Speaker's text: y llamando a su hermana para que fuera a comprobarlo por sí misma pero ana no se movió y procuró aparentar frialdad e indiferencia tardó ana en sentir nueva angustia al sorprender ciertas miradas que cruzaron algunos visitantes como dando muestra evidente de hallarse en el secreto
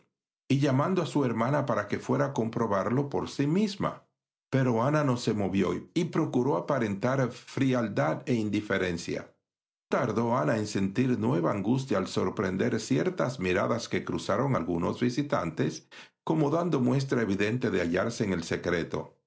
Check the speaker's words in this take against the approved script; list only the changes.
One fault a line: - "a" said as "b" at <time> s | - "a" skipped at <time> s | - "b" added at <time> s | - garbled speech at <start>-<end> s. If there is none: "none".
none